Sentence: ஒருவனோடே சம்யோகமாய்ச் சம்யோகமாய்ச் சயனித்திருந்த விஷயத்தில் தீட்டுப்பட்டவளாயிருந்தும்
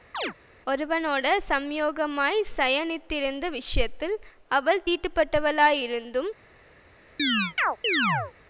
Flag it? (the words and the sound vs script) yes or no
yes